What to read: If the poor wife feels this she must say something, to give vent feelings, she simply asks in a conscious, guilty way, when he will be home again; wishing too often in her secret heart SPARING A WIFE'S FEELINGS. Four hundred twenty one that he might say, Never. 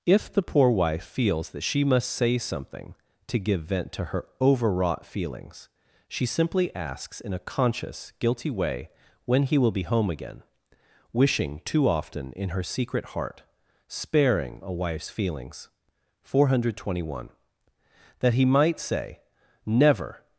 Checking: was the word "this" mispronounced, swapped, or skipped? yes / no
yes